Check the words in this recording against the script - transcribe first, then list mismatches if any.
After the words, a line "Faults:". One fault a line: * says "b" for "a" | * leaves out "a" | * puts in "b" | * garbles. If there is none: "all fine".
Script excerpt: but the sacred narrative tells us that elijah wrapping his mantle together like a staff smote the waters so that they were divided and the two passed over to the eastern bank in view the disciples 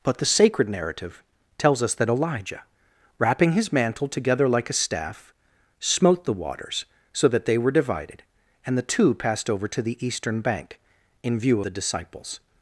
but the sacred narrative tells us that elijah wrapping his mantle together like a staff smote the waters so that they were divided and the two passed over to the eastern bank in view the disciples
Faults:
all fine